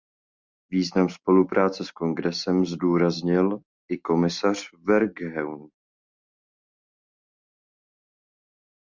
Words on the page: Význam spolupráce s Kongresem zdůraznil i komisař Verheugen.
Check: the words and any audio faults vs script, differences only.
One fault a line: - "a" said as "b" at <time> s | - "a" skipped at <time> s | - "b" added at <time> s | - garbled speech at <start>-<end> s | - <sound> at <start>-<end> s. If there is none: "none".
none